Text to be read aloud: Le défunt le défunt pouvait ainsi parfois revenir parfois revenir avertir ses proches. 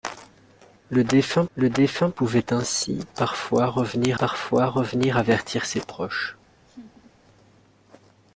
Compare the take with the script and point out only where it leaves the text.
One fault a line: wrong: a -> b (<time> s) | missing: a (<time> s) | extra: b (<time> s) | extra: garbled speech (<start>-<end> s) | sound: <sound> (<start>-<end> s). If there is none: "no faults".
sound: laugh (6.7-7.1 s)